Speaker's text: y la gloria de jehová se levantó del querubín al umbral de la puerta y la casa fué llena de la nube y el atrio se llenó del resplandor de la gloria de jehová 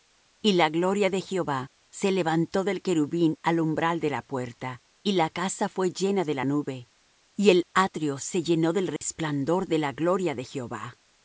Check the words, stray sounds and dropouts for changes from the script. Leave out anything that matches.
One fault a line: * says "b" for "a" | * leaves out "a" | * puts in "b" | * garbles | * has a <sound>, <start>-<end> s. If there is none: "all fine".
* has a dropout, 9.0-9.0 s